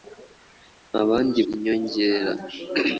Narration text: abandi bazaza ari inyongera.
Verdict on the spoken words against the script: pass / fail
fail